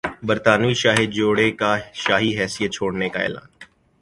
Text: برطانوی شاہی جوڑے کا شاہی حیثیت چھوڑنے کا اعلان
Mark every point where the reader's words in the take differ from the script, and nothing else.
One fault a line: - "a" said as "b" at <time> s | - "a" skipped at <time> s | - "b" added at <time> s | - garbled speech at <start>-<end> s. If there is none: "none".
none